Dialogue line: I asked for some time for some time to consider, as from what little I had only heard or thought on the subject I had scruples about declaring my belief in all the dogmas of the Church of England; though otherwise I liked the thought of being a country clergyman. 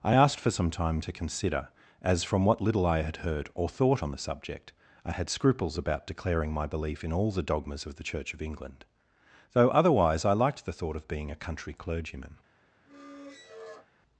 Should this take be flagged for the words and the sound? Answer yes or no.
yes